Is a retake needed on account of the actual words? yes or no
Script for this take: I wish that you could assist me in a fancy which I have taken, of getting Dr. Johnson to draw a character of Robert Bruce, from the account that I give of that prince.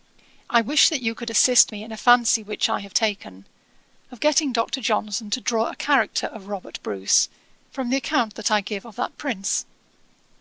no